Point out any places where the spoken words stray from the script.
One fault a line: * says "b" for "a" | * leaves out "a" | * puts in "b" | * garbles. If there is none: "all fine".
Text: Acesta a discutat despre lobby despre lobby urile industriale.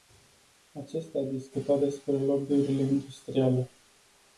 * leaves out "despre lobby"